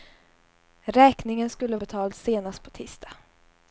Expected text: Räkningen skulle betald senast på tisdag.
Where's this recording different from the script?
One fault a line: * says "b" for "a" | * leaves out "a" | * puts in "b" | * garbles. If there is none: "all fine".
all fine